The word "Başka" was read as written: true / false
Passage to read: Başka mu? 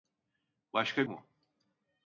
true